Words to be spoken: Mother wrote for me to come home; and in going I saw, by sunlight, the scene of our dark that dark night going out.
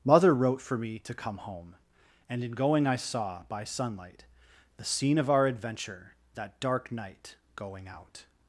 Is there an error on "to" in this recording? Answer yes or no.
no